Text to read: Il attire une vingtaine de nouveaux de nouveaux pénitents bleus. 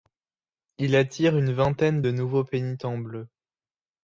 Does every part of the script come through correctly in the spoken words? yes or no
no